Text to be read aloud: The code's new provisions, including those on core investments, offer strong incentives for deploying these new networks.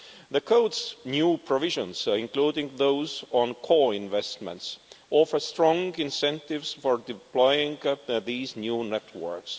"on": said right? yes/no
yes